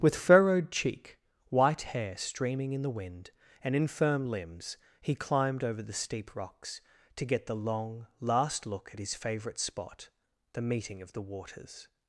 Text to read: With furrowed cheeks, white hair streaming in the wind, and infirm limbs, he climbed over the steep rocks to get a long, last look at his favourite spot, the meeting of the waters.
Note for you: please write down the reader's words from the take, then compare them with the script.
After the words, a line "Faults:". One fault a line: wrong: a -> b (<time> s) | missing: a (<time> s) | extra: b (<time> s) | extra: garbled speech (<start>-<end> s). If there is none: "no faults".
With furrowed cheek, white hair streaming in the wind, and infirm limbs, he climbed over the steep rocks to get the long, last look at his favourite spot, the meeting of the waters.
Faults:
wrong: cheeks -> cheek (0.7 s)
wrong: a -> the (7.5 s)